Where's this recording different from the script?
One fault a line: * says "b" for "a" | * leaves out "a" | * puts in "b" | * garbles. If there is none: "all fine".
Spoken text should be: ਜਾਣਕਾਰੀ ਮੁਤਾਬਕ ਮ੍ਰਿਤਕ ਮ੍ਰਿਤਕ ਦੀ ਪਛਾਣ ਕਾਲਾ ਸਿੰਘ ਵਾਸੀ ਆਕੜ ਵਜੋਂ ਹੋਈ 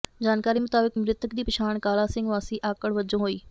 * leaves out "ਮ੍ਰਿਤਕ"